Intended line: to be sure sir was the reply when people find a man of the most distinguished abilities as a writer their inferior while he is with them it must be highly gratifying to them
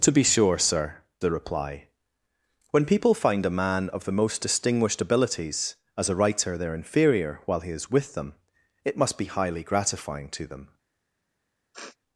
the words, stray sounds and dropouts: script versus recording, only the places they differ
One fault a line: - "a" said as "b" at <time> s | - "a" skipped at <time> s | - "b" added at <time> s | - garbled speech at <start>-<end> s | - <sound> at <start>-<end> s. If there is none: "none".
- "was" skipped at 1.0 s
- sniff at 11.7-12.0 s